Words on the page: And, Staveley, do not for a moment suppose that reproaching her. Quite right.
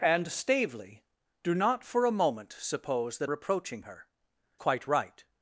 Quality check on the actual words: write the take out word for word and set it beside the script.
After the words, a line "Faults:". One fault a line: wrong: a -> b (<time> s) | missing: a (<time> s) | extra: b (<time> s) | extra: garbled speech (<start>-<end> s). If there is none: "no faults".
And, Staveley, do not for a moment suppose that reproaching her. Quite right.
Faults:
no faults